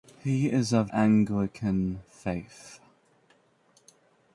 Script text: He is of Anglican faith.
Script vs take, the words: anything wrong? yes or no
no